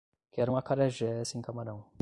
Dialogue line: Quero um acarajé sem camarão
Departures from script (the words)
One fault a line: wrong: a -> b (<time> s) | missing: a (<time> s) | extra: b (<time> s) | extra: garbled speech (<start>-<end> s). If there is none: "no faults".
no faults